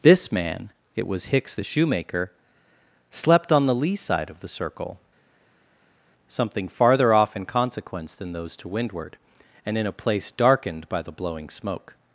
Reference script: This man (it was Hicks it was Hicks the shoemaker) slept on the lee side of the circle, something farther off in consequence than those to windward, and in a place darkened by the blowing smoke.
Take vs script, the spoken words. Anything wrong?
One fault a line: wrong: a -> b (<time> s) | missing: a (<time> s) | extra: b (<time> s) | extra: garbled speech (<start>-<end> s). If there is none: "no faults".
missing: it was Hicks (1.6 s)